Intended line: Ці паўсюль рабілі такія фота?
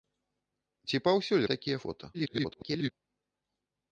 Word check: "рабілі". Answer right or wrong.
wrong